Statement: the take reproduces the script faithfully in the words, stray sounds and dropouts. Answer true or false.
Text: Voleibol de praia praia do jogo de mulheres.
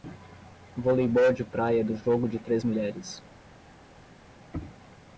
false